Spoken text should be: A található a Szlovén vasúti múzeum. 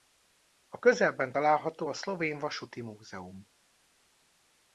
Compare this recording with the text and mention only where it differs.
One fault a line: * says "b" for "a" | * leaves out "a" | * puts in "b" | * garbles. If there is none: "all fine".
* puts in "közelben"